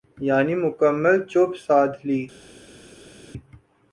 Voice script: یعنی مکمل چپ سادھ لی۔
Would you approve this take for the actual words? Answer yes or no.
yes